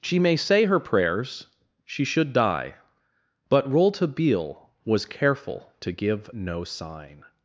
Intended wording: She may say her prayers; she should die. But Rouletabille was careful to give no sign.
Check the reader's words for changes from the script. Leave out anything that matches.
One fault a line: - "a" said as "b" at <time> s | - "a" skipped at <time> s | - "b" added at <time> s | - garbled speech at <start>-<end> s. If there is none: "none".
none